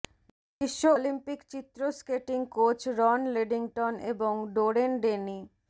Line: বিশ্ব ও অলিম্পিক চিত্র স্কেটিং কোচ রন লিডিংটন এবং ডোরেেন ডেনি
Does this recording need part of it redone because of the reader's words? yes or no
yes